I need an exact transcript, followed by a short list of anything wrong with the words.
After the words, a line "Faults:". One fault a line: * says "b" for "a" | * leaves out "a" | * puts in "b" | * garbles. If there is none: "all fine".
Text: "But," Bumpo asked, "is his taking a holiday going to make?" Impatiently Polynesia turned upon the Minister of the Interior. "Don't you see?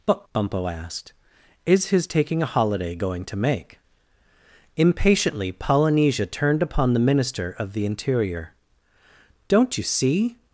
"But," Bumpo asked, "is his taking a holiday going to make?" Impatiently Polynesia turned upon the Minister of the Interior. "Don't you see?
Faults:
all fine